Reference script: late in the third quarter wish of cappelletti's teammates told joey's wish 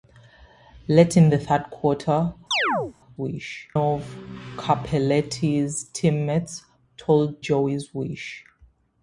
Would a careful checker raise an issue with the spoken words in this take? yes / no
no